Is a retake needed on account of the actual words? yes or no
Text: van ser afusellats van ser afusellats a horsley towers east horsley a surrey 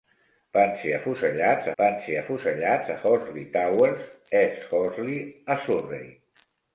no